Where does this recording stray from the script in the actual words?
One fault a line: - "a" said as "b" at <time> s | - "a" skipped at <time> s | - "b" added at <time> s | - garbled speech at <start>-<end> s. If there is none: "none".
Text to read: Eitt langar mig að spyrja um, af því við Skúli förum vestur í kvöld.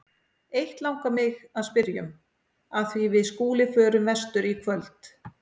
none